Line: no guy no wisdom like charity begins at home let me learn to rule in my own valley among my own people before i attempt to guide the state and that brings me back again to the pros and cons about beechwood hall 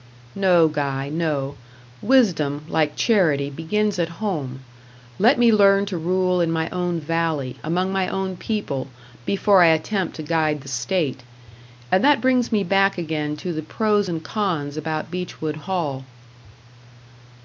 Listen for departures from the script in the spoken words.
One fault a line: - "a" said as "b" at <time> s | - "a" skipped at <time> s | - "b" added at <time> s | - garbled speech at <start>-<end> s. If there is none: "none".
none